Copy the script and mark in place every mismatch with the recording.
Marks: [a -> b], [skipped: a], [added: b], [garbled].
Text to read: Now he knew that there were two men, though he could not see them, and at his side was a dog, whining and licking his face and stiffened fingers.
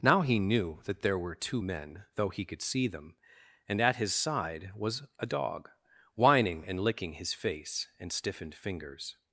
Now he knew that there were two men, though he could [skipped: not] see them, and at his side was a dog, whining and licking his face and stiffened fingers.